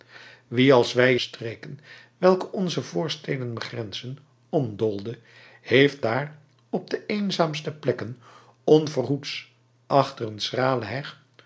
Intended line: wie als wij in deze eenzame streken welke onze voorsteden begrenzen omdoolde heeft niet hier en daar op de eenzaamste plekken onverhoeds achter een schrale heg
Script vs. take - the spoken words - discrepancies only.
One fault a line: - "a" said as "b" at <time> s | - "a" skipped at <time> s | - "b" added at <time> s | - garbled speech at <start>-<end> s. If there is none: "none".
- "in deze eenzame" skipped at 1.1 s
- "niet hier en" skipped at 6.0 s